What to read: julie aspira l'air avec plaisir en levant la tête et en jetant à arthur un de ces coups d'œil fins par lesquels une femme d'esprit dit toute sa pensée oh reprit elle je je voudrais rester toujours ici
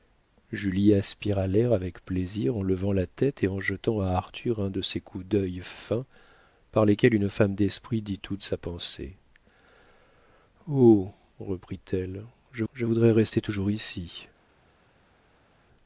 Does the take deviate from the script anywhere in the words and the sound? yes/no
no